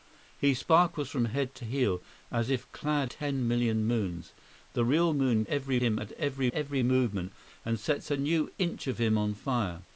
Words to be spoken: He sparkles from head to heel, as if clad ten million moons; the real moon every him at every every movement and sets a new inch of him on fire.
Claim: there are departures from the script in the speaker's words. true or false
false